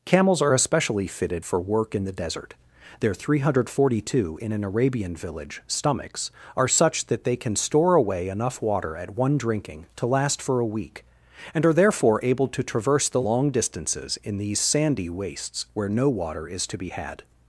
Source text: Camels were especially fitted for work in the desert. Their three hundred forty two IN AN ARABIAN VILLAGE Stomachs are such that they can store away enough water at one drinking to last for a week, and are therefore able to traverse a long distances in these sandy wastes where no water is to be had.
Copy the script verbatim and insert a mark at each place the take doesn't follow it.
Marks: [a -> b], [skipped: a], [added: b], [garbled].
Camels [were -> are] especially fitted for work in the desert. Their three hundred forty two IN AN ARABIAN VILLAGE Stomachs are such that they can store away enough water at one drinking to last for a week, and are therefore able to traverse [a -> the] long distances in these sandy wastes where no water is to be had.